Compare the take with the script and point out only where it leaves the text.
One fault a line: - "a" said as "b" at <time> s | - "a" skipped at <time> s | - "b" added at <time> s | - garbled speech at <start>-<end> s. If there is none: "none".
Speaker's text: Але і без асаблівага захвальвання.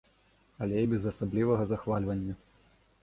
none